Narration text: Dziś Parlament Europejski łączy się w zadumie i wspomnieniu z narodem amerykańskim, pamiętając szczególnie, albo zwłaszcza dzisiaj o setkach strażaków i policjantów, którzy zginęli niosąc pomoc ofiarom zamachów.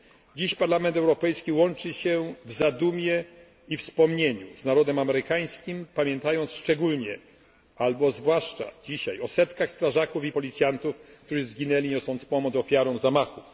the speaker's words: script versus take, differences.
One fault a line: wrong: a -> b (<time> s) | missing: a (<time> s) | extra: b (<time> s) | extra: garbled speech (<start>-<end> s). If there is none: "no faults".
no faults